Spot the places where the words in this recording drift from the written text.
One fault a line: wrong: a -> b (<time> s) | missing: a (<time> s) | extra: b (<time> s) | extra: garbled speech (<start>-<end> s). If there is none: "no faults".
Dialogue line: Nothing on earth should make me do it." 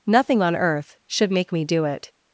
no faults